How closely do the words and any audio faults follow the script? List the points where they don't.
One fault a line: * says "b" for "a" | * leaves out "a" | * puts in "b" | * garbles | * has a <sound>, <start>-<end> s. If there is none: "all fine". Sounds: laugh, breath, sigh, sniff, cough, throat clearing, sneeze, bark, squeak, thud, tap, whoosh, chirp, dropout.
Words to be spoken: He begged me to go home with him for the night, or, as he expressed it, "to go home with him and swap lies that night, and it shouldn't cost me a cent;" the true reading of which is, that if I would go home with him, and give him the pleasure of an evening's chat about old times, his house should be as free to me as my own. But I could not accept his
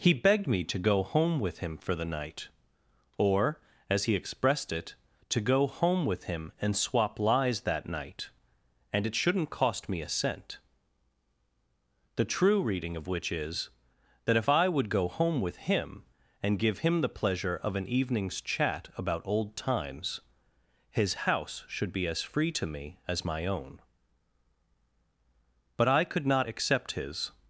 all fine